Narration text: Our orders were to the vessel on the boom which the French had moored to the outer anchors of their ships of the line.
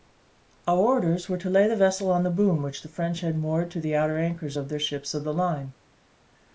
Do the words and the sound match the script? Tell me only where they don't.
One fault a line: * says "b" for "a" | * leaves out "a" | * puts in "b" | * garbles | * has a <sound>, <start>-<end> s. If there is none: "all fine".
* puts in "lay"